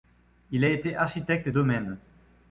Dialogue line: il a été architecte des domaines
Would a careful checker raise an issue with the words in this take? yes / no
yes